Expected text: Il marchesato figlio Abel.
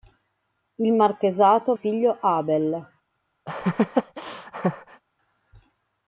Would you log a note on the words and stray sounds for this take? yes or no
yes